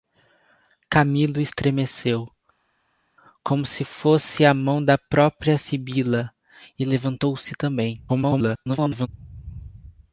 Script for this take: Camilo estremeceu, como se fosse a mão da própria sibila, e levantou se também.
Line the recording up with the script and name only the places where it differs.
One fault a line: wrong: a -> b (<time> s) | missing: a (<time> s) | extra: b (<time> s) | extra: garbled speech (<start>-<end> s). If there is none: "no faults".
extra: garbled speech (8.1-9.1 s)